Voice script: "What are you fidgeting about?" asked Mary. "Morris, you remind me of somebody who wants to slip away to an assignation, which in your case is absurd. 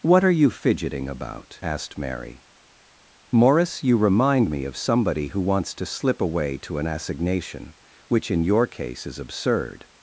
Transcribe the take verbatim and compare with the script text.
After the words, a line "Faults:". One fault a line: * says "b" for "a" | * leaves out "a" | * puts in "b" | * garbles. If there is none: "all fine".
"What are you fidgeting about?" asked Mary. "Morris, you remind me of somebody who wants to slip away to an assignation, which in your case is absurd.
Faults:
all fine